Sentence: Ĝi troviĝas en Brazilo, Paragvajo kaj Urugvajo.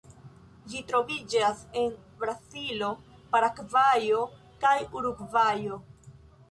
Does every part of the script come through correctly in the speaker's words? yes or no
yes